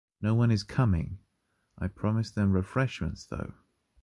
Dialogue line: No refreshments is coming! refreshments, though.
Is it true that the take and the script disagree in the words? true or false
true